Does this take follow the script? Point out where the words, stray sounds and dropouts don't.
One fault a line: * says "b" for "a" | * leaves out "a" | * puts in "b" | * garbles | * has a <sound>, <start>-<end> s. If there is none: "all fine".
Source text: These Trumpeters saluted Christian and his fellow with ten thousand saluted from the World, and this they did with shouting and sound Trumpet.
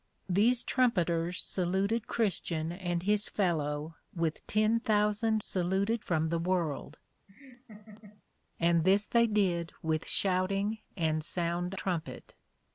* has a laugh, 7.3-8.2 s